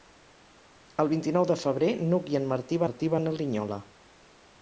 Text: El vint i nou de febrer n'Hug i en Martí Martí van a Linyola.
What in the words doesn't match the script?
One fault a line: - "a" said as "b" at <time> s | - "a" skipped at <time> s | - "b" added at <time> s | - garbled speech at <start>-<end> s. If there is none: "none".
none